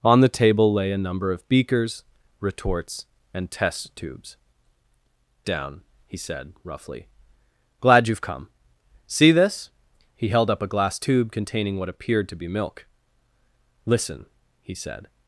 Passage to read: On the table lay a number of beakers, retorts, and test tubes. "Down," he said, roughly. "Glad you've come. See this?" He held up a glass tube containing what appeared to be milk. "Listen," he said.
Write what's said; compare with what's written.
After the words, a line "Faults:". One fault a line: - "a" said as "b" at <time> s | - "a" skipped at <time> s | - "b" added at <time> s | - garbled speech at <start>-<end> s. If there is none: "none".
On the table lay a number of beakers, retorts, and test tubes. "Down," he said, roughly. "Glad you've come. See this?" He held up a glass tube containing what appeared to be milk. "Listen," he said.
Faults:
none